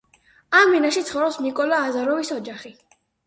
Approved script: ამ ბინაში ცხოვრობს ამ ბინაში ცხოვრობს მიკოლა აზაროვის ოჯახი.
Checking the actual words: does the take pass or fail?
fail